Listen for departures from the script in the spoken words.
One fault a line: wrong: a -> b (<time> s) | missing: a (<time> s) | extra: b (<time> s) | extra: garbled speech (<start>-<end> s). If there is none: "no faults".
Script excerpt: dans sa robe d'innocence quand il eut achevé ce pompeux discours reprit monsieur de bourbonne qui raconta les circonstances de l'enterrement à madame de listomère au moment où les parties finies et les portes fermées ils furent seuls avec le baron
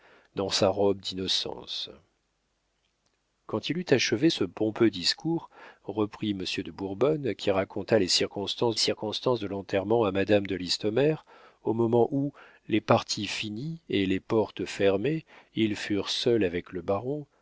extra: circonstances (8.7 s)